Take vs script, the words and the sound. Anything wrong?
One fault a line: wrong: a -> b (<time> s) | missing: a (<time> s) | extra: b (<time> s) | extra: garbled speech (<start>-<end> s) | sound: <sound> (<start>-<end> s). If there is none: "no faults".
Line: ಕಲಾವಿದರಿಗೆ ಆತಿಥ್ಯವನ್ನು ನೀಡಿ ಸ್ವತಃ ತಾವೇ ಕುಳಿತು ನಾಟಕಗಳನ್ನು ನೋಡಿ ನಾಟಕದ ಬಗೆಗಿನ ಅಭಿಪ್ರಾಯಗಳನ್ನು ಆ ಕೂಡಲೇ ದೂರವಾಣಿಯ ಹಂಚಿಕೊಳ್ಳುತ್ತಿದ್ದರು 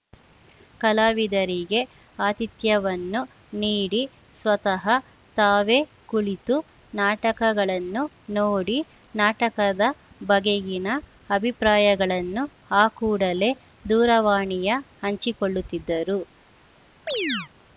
sound: chirp (17.1-17.5 s)